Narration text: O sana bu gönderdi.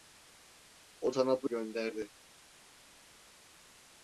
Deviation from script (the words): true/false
false